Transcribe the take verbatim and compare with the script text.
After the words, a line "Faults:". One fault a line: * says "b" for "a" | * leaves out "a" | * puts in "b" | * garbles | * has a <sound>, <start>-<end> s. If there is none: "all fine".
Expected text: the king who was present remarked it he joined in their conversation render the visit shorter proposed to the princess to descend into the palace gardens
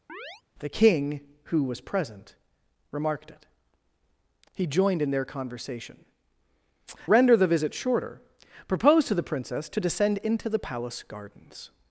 the king who was present remarked it he joined in their conversation render the visit shorter proposed to the princess to descend into the palace gardens
Faults:
* has a chirp, 0.1-0.4 s